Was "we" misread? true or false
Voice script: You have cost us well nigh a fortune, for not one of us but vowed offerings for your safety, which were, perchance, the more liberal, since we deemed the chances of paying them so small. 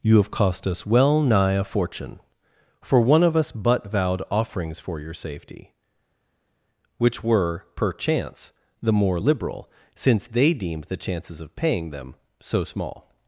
true